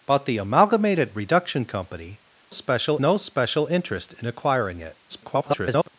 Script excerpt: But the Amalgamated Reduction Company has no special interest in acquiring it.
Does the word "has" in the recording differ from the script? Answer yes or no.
yes